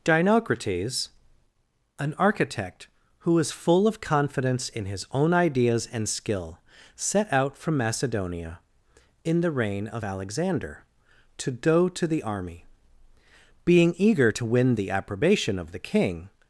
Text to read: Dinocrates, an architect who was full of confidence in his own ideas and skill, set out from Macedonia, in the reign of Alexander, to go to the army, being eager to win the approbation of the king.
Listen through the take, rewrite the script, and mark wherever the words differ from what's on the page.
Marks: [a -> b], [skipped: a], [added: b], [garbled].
Dinocrates, an architect who was full of confidence in his own ideas and skill, set out from Macedonia, in the reign of Alexander, to go to the army, being eager to win the approbation of the king.